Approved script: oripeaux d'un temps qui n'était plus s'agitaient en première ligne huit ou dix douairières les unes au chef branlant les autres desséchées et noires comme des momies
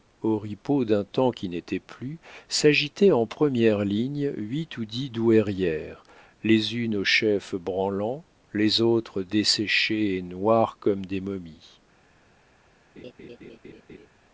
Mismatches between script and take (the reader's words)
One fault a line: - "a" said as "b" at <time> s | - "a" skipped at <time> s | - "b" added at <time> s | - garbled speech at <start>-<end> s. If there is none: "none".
none